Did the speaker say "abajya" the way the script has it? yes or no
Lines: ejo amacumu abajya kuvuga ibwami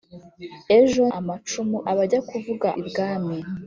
yes